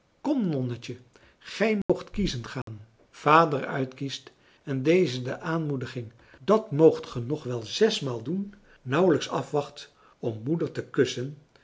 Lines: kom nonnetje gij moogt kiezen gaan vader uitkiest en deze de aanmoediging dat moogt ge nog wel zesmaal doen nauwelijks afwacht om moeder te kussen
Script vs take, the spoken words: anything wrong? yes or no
no